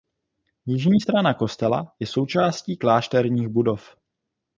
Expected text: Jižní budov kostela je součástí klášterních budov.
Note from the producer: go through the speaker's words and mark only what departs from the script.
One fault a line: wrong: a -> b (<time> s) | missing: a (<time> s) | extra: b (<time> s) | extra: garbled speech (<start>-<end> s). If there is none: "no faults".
wrong: budov -> strana (1.0 s)